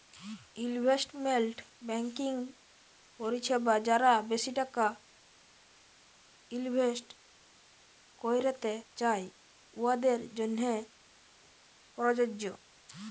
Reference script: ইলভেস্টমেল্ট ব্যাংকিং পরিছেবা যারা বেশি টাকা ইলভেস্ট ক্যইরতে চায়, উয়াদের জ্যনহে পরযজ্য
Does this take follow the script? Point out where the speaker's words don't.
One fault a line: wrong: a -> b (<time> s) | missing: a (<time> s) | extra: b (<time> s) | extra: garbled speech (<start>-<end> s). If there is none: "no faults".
no faults